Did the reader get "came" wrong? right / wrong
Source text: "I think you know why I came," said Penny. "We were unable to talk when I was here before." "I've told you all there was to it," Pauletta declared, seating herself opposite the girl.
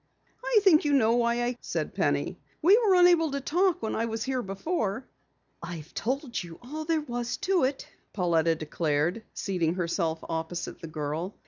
wrong